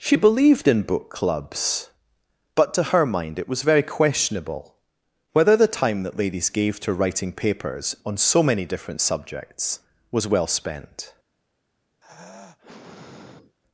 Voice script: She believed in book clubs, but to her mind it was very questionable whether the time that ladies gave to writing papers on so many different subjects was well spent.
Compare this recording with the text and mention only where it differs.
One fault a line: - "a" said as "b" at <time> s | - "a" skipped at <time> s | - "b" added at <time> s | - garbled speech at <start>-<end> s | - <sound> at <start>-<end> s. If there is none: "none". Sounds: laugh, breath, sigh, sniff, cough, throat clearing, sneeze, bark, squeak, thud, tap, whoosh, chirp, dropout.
- sigh at 12.0-13.6 s